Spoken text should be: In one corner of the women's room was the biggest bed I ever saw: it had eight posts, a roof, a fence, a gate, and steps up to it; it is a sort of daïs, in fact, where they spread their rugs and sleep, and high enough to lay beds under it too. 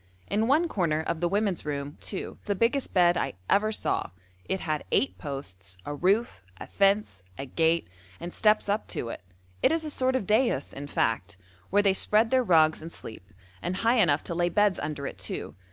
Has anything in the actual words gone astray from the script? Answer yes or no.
yes